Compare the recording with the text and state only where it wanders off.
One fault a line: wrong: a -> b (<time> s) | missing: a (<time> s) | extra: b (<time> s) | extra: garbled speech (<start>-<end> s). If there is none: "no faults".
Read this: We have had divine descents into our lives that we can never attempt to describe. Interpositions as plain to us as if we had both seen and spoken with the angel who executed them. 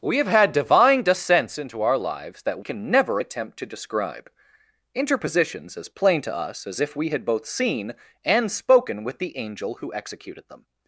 missing: we (2.6 s)